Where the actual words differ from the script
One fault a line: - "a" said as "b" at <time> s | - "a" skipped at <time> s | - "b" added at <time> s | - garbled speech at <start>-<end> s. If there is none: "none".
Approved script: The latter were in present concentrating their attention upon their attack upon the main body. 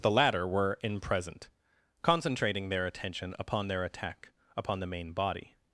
none